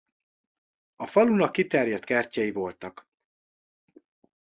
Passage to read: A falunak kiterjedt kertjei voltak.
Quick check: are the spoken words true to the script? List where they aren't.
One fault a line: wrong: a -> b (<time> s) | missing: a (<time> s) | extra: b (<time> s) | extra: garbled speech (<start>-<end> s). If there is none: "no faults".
no faults